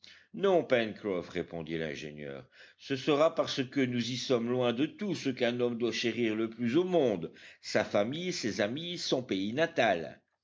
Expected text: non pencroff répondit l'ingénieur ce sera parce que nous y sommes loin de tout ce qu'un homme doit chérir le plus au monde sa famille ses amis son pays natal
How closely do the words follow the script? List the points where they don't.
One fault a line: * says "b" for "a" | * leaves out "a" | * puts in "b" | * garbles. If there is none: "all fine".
all fine